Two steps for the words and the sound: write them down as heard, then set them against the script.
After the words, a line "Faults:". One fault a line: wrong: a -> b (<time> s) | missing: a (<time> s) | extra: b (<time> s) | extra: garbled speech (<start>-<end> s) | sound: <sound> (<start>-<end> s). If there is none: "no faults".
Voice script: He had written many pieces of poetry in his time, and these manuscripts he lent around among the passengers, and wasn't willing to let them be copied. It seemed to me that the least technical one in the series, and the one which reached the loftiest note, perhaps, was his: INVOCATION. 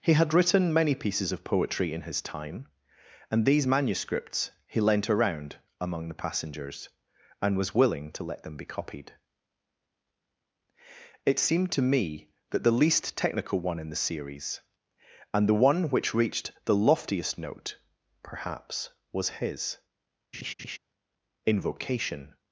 He had written many pieces of poetry in his time, and these manuscripts he lent around among the passengers, and was willing to let them be copied. It seemed to me that the least technical one in the series, and the one which reached the loftiest note, perhaps, was his: INVOCATION.
Faults:
wrong: wasn't -> was (7.6 s)
sound: laugh (20.3-20.8 s)